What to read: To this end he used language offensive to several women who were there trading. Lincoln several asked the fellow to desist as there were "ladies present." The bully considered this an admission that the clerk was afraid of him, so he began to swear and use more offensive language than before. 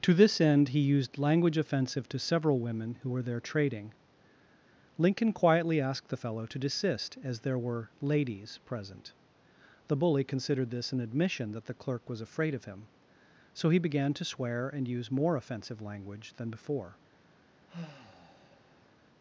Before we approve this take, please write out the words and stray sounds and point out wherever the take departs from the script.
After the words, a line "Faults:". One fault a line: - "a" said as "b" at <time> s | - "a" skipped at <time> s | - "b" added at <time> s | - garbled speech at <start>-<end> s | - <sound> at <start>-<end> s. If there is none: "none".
To this end he used language offensive to several women who were there trading. Lincoln quietly asked the fellow to desist as there were "ladies present." The bully considered this an admission that the clerk was afraid of him, so he began to swear and use more offensive language than before.
Faults:
- "several" said as "quietly" at 5.3 s
- sigh at 17.7-18.9 s